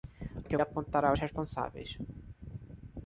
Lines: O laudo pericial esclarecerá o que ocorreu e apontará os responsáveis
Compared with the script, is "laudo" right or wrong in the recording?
wrong